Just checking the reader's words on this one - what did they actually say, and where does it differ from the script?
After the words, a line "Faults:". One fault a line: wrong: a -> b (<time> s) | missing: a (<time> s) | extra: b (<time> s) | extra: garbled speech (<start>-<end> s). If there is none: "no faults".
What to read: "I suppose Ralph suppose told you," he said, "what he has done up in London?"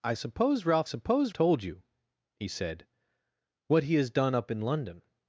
"I suppose Ralph suppose told you," he said, "what he has done up in London?"
Faults:
no faults